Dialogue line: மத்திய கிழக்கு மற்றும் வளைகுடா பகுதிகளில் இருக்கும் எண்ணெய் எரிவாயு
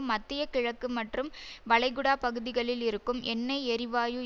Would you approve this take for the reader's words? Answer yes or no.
yes